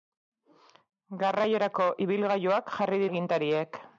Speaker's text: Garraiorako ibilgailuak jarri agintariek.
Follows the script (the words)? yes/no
yes